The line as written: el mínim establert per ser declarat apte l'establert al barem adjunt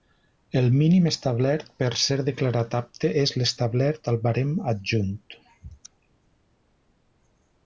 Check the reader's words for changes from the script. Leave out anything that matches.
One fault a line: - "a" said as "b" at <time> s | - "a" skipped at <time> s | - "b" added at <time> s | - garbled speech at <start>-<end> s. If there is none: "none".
- "és" added at 3.2 s